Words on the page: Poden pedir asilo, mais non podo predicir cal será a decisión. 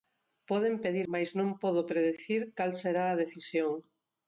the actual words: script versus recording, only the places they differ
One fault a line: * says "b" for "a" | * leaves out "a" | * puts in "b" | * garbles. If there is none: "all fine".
* leaves out "asilo"